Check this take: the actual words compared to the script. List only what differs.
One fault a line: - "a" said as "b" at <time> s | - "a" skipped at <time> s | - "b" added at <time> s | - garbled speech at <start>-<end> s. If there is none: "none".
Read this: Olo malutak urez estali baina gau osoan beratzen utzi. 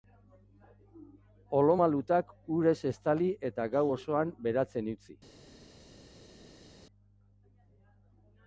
- "baina" said as "eta" at 3.5 s